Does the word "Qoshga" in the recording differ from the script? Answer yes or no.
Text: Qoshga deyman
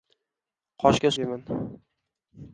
no